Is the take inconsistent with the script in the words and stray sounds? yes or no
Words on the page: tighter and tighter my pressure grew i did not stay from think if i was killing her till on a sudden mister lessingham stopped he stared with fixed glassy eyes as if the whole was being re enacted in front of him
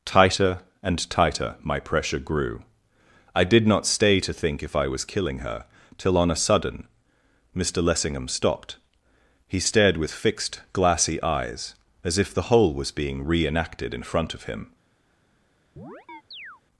yes